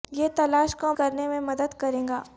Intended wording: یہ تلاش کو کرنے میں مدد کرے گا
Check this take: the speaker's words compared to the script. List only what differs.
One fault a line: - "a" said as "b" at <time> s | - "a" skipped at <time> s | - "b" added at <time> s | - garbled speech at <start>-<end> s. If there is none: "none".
none